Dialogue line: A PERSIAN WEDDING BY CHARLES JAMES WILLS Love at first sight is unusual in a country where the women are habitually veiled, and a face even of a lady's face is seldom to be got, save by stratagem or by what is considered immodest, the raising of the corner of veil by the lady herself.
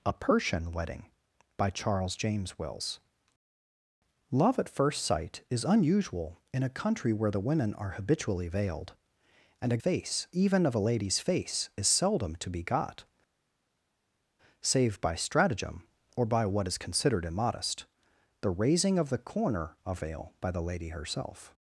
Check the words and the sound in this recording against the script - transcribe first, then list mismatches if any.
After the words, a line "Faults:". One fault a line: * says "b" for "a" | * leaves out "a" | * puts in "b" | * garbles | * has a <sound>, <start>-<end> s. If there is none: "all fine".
A PERSIAN WEDDING BY CHARLES JAMES WILLS Love at first sight is unusual in a country where the women are habitually veiled, and a face even of a lady's face is seldom to be got, save by stratagem or by what is considered immodest, the raising of the corner of veil by the lady herself.
Faults:
all fine